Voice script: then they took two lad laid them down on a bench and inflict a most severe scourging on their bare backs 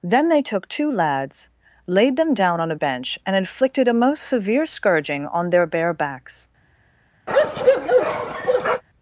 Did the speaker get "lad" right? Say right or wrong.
wrong